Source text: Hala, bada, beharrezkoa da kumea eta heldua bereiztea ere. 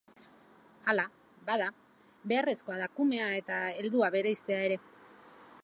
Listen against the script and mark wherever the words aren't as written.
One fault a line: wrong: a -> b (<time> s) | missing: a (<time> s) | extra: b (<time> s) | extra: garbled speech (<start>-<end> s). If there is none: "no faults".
no faults